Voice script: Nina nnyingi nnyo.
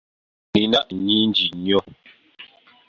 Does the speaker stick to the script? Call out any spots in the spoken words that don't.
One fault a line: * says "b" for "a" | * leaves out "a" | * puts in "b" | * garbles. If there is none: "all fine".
all fine